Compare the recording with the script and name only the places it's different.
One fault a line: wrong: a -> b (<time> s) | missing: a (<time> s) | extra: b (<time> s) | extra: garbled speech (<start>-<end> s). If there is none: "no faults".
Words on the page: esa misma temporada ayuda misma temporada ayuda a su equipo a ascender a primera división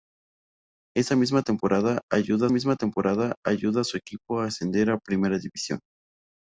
no faults